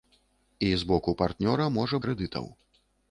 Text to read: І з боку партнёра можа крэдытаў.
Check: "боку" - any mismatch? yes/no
no